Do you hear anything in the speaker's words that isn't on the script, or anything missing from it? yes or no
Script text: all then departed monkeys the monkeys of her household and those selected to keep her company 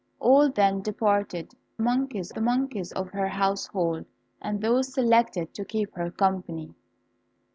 no